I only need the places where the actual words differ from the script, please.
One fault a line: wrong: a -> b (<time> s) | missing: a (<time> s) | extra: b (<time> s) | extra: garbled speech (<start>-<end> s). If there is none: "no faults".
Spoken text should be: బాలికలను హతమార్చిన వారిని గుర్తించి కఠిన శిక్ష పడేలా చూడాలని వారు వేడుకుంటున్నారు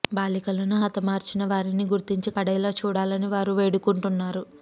missing: కఠిన శిక్ష (2.3 s)